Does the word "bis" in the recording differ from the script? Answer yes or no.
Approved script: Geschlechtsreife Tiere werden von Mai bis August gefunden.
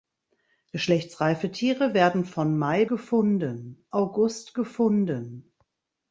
yes